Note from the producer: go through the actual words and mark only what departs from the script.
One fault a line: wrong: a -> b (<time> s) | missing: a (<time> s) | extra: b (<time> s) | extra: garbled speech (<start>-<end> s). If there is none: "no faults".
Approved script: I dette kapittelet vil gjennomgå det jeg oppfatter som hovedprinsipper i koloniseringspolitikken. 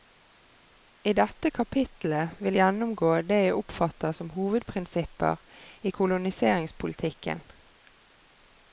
no faults